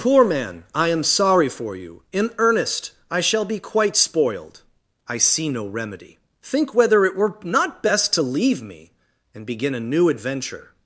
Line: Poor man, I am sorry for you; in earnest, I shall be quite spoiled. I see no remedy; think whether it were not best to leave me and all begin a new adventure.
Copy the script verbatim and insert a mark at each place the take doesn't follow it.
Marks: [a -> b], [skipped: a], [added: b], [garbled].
Poor man, I am sorry for you; in earnest, I shall be quite spoiled. I see no remedy; think whether it were not best to leave me and [skipped: all] begin a new adventure.